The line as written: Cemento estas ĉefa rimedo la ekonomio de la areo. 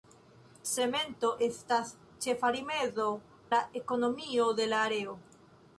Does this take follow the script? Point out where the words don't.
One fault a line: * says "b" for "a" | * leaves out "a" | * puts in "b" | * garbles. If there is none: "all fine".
all fine